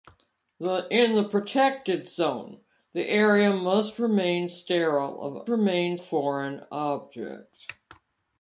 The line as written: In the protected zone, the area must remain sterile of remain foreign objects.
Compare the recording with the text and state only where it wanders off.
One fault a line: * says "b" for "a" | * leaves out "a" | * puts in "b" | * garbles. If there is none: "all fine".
all fine